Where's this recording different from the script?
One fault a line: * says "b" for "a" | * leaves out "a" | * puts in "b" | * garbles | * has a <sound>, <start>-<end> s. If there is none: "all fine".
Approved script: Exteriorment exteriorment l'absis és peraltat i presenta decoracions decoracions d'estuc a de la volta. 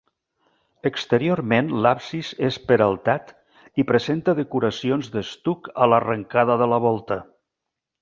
* leaves out "exteriorment"
* leaves out "decoracions"
* puts in "l'arrencada"